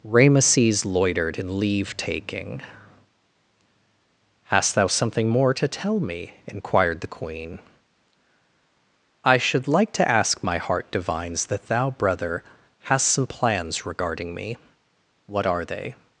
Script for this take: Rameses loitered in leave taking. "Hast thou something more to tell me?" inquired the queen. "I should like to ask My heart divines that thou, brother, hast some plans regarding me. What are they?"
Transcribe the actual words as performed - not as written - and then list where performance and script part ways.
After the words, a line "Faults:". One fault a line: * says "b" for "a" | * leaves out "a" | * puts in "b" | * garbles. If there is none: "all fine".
Rameses loitered in leave taking. "Hast thou something more to tell me?" inquired the queen. "I should like to ask My heart divines that thou, brother, hast some plans regarding me. What are they?"
Faults:
all fine